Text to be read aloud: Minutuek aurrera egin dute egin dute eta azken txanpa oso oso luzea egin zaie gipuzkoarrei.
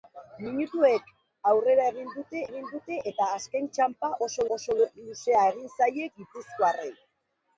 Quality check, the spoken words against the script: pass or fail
pass